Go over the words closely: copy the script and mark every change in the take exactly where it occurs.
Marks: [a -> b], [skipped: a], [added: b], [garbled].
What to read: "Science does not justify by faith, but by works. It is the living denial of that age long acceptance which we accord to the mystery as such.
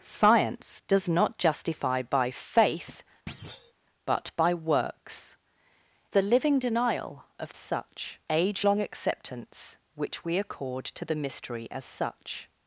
"Science does not justify by faith, but by works. [skipped: It is] the living denial of [that -> such] age long acceptance which we accord to the mystery as such.